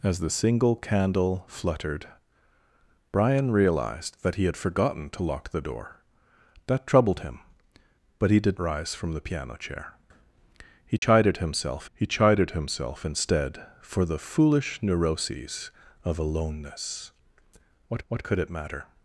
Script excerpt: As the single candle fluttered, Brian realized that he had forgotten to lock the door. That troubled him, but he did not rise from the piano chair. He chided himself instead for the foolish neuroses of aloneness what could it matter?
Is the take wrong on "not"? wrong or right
wrong